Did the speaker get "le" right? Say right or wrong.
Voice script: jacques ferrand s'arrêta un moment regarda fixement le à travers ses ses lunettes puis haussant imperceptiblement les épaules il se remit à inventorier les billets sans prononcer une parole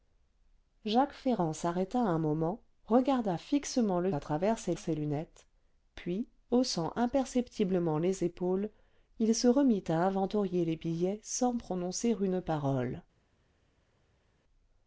right